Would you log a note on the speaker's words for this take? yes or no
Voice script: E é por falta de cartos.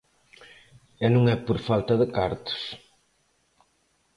yes